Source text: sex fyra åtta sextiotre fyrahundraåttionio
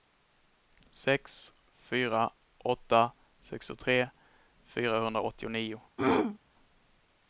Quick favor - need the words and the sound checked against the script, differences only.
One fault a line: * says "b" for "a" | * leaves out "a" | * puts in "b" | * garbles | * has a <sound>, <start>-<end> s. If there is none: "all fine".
* has a throat clearing, 6.0-6.4 s